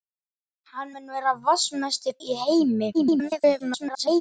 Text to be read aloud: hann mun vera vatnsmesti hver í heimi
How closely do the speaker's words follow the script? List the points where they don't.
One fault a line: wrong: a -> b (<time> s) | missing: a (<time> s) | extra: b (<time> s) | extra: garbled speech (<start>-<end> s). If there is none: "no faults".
missing: hver (2.2 s)
extra: garbled speech (2.9-4.2 s)